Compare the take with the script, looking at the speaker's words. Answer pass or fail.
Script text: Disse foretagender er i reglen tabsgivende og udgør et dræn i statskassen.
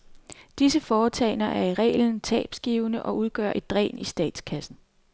pass